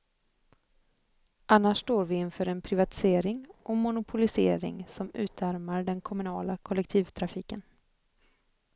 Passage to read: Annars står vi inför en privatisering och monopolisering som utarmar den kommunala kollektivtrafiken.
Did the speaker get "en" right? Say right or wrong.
right